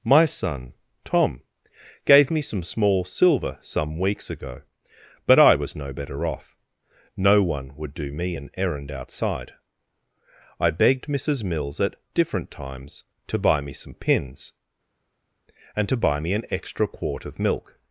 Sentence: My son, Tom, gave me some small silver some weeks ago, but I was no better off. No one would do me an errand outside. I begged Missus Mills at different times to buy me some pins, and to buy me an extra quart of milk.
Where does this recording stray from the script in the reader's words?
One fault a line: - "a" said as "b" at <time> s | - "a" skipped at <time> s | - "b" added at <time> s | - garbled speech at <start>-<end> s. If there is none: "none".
none